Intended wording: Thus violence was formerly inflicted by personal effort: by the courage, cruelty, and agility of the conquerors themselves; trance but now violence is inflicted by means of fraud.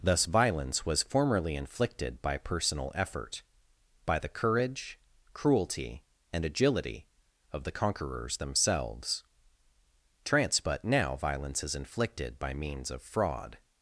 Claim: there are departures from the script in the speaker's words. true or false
false